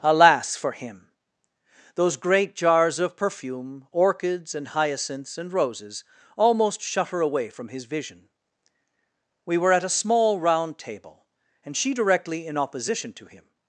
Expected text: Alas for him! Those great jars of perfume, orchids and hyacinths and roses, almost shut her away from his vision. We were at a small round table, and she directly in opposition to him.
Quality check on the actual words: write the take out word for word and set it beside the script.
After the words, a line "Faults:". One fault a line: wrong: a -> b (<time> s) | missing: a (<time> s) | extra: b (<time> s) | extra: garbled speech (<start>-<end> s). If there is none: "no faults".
Alas for him! Those great jars of perfume, orchids and hyacinths and roses, almost shut her away from his vision. We were at a small round table, and she directly in opposition to him.
Faults:
no faults